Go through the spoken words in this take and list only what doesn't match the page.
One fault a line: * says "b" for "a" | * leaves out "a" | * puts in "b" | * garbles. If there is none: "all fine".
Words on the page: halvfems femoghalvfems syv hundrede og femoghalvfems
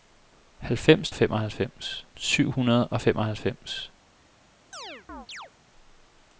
all fine